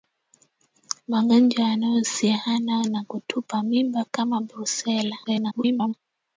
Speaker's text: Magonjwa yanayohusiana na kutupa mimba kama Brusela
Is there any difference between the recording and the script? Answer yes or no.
yes